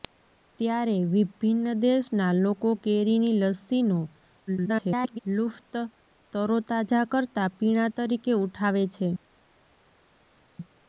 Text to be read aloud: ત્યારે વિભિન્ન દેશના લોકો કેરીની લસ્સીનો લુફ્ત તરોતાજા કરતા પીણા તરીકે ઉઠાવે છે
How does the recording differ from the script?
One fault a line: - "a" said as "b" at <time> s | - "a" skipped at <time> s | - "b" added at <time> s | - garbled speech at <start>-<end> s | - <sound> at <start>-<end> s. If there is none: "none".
- garbled speech at 4.5-5.2 s